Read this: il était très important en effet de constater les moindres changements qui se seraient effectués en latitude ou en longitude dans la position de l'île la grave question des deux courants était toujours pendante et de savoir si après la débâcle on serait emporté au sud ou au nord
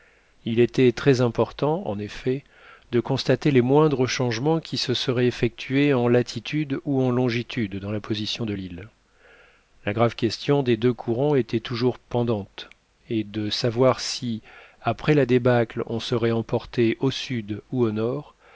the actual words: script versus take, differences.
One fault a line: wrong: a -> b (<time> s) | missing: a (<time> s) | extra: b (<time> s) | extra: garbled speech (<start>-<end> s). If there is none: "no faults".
no faults